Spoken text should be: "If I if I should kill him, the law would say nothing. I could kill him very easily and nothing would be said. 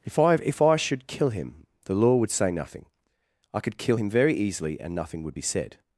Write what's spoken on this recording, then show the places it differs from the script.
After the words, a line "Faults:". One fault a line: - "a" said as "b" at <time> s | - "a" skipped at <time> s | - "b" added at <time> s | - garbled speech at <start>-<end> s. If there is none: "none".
"If I if I should kill him, the law would say nothing. I could kill him very easily and nothing would be said.
Faults:
none